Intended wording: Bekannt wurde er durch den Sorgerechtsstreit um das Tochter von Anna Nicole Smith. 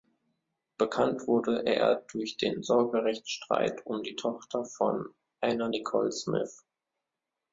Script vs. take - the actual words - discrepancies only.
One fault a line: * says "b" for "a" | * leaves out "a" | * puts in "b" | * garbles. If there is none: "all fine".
* says "die" for "das"